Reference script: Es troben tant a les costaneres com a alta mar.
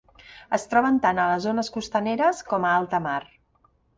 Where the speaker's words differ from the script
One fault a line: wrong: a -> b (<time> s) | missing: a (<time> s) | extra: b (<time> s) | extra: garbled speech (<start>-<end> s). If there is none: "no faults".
extra: zones (1.5 s)